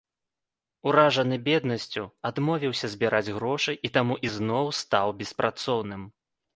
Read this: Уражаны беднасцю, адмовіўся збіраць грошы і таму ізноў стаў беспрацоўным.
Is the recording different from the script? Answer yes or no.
no